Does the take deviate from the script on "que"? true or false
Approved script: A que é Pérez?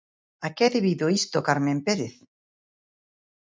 false